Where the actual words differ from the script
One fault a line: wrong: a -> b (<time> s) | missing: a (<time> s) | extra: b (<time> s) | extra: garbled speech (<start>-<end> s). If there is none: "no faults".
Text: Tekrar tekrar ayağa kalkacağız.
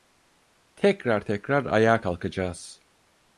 no faults